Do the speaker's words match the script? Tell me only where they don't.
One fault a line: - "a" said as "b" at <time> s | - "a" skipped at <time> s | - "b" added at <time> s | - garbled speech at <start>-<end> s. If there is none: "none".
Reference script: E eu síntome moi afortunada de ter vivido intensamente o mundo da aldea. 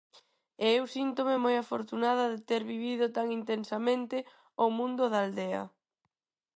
- "tan" added at 3.2 s